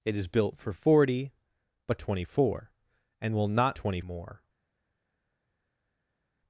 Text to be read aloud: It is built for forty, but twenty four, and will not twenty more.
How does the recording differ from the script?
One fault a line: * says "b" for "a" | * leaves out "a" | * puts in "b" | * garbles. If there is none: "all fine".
all fine